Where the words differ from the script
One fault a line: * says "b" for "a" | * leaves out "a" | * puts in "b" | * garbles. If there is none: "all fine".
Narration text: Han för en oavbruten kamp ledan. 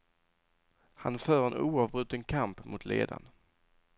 * puts in "mot"